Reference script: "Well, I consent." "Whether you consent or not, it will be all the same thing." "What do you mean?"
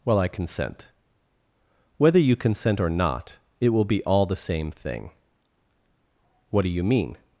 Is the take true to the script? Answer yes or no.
yes